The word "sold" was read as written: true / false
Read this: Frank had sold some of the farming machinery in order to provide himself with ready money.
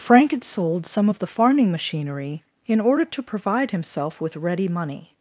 true